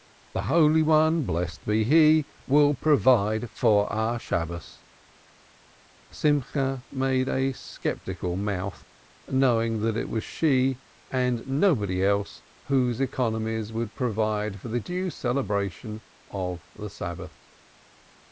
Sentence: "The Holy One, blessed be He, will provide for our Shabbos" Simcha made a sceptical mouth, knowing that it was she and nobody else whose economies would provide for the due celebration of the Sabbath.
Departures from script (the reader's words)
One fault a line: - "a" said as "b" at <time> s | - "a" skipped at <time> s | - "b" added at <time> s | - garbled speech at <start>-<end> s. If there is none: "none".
none